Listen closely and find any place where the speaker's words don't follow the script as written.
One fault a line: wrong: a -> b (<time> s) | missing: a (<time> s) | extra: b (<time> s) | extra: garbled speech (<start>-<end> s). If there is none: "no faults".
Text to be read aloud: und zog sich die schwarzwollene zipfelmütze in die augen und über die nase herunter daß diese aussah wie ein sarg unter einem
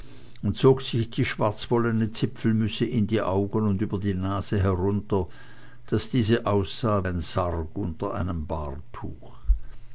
missing: wie (7.1 s)